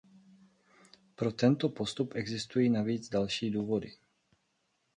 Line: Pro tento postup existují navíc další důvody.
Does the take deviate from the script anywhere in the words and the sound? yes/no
no